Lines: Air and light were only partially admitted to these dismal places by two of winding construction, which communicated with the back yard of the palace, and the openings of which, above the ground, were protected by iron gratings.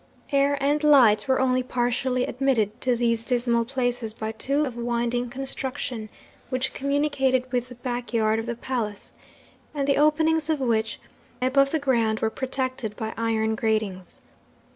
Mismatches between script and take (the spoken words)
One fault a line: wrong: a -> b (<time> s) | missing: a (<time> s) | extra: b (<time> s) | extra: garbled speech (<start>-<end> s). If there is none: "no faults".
no faults